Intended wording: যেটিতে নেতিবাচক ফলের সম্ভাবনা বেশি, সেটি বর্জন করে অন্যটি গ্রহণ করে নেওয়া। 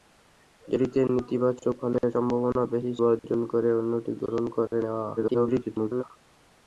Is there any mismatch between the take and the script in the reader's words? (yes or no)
yes